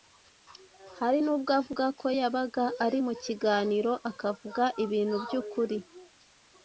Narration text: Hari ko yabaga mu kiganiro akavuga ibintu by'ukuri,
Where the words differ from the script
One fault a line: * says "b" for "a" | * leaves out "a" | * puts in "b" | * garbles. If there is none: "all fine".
* puts in "nubwo avuga"
* puts in "ari"